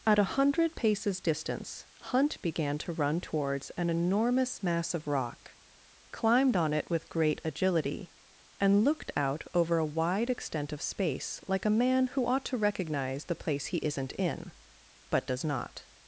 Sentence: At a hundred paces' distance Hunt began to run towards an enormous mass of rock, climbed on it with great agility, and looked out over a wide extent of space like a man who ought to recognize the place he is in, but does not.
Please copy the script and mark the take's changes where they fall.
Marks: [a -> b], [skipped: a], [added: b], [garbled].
At a hundred paces' distance Hunt began to run towards an enormous mass of rock, climbed on it with great agility, and looked out over a wide extent of space like a man who ought to recognize the place he [is -> isn't] in, but does not.